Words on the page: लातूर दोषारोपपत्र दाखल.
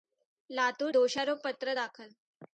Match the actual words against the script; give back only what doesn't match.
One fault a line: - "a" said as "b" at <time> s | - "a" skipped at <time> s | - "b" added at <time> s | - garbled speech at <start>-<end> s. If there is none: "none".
none